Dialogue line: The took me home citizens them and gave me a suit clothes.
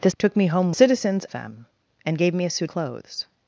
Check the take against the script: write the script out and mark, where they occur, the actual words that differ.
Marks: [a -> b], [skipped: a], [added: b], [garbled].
The took me home citizens them and gave me a suit clothes.